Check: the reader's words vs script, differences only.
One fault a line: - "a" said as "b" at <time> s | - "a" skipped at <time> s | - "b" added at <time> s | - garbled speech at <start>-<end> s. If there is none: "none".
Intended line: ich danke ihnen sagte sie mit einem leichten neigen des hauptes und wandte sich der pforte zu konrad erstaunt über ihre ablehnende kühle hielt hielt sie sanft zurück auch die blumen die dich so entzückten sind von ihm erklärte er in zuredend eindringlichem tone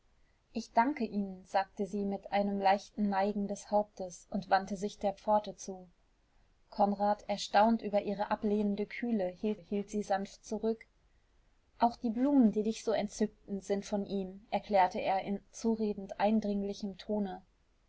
none